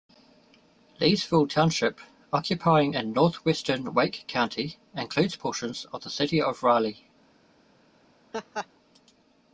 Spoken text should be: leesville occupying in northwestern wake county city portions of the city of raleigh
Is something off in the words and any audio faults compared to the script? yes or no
yes